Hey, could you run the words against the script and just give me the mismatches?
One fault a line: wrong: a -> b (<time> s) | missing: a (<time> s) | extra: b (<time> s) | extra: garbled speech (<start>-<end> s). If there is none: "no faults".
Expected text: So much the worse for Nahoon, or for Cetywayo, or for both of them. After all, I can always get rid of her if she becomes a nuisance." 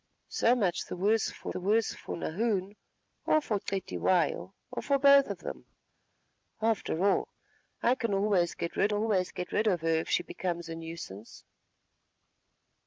extra: the worse for (1.5 s)
extra: always get rid (8.9 s)